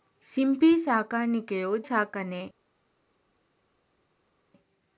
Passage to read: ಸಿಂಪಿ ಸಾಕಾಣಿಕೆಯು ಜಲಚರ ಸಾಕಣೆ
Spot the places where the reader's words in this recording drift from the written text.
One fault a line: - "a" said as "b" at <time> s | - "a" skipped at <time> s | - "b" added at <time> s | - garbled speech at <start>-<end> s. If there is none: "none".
- "ಜಲಚರ" skipped at 1.8 s